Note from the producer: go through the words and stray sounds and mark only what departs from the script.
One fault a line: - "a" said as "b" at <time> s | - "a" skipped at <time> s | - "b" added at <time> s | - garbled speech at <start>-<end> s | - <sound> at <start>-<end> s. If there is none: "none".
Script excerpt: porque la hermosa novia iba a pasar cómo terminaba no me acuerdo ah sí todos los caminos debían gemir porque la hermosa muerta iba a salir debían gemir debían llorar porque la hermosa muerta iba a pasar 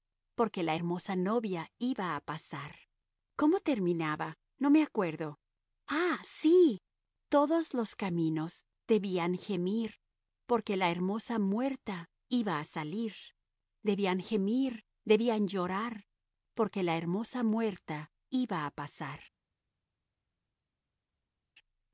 none